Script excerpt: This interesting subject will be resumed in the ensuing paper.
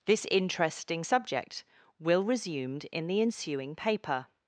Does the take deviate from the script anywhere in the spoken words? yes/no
yes